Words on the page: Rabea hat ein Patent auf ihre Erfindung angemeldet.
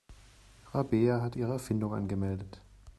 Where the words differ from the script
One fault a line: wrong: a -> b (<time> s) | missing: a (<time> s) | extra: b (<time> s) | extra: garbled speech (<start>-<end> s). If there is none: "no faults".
missing: ein Patent auf (1.4 s)